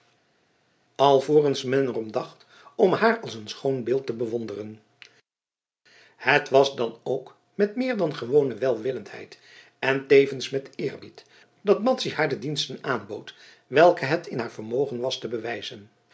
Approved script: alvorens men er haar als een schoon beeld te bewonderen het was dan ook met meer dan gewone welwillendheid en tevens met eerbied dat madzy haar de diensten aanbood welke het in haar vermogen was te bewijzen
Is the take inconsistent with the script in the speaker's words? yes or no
yes